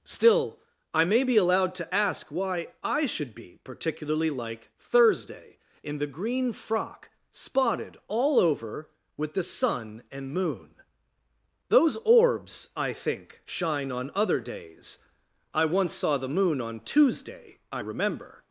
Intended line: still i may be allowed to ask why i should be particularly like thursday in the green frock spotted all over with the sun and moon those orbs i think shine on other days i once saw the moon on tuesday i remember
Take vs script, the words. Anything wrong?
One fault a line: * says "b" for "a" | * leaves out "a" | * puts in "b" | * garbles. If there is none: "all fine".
all fine